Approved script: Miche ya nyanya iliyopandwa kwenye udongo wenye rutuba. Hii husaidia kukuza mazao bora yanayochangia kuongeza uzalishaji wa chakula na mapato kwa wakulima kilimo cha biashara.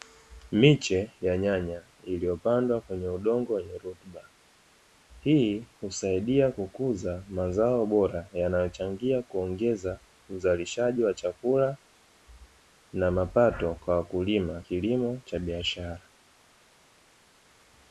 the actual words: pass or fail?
pass